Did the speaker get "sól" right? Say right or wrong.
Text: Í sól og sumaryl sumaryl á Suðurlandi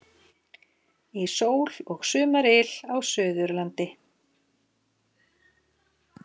right